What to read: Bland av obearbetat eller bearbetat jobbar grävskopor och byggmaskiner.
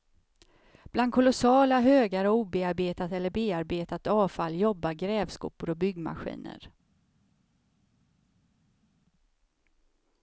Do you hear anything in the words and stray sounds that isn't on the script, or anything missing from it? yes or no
yes